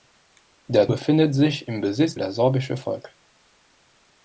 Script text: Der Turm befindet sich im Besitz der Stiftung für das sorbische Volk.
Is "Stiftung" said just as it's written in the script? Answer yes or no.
no